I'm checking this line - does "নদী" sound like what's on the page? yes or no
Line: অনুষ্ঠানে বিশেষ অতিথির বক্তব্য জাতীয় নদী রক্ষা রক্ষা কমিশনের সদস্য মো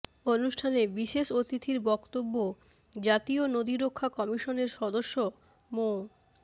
yes